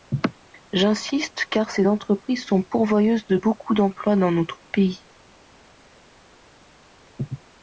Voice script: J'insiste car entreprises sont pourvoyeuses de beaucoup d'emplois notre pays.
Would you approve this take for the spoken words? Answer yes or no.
no